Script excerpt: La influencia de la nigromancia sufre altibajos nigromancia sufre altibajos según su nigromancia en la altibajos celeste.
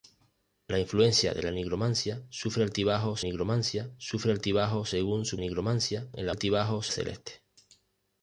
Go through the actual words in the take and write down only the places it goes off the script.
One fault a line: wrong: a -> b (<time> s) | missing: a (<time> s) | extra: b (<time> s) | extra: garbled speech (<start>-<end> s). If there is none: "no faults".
no faults